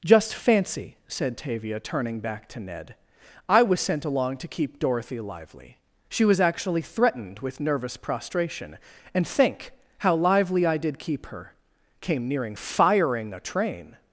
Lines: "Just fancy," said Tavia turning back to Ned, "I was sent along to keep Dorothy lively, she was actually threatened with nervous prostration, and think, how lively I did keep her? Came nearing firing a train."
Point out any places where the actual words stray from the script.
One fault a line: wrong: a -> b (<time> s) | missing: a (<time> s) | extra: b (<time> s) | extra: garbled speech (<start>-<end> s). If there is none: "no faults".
no faults